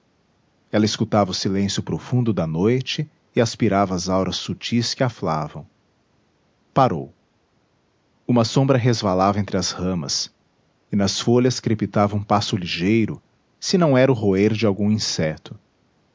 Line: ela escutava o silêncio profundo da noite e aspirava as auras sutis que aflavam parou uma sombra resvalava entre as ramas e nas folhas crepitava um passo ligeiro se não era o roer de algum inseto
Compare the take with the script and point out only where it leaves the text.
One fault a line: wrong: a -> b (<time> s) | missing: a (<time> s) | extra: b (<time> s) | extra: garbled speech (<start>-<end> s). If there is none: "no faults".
no faults